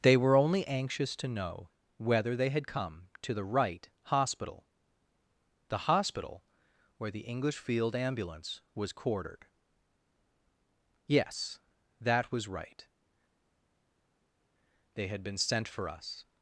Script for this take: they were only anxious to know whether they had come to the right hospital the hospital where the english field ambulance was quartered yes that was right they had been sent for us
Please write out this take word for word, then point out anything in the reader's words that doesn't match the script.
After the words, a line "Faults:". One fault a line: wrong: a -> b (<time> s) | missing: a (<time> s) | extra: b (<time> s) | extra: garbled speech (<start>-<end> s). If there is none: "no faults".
they were only anxious to know whether they had come to the right hospital the hospital where the english field ambulance was quartered yes that was right they had been sent for us
Faults:
no faults